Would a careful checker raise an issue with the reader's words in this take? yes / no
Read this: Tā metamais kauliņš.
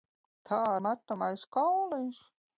no